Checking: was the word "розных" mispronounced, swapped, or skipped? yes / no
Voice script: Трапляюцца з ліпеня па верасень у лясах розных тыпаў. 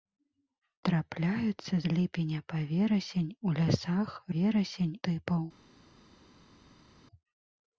yes